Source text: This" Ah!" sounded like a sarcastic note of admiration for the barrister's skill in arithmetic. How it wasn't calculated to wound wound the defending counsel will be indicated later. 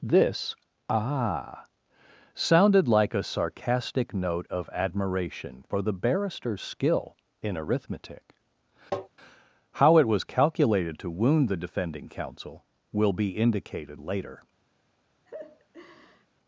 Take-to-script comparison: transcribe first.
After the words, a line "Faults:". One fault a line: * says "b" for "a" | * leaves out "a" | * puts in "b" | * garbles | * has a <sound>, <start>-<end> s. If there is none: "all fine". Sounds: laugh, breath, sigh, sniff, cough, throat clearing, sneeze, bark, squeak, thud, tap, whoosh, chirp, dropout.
This" Ah!" sounded like a sarcastic note of admiration for the barrister's skill in arithmetic. How it was calculated to wound the defending counsel will be indicated later.
Faults:
* has a tap, 8.9-9.1 s
* says "was" for "wasn't"
* leaves out "wound"
* has a laugh, 15.3-16.3 s